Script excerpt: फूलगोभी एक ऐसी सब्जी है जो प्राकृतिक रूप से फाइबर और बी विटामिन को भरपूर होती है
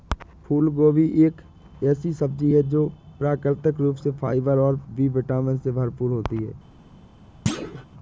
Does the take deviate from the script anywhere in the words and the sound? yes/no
yes